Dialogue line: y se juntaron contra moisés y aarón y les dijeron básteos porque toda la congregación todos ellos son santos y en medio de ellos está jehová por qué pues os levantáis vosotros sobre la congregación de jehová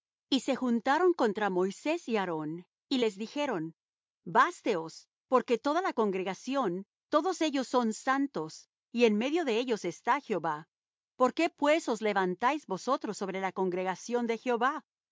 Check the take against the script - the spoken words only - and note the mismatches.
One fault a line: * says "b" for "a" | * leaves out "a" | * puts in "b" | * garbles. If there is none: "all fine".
all fine